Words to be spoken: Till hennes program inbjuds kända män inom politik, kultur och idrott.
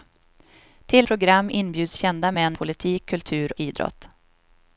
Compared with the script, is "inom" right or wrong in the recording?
wrong